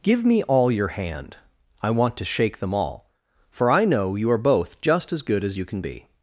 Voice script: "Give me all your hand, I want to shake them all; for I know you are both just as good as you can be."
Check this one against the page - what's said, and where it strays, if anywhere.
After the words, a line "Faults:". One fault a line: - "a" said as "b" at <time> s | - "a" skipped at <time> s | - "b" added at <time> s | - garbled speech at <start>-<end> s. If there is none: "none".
"Give me all your hand, I want to shake them all; for I know you are both just as good as you can be."
Faults:
none